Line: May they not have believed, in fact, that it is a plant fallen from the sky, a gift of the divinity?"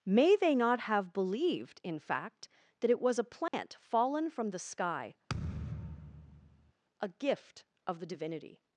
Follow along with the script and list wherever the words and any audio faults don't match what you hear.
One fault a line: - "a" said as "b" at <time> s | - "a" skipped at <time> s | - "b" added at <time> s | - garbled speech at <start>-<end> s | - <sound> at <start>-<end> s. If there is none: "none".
- "is" said as "was" at 3.0 s
- dropout at 3.5-3.5 s
- thud at 5.3-6.7 s